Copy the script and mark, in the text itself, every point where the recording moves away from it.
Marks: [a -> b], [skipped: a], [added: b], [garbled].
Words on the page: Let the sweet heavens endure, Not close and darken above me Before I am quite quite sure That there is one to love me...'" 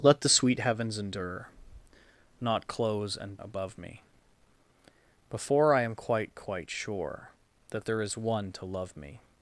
Let the sweet heavens endure, Not close and [skipped: darken] above me Before I am quite quite sure That there is one to love me...'"